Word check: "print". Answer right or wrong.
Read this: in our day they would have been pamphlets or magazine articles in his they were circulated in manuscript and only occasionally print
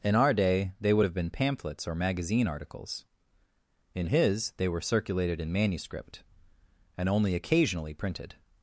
wrong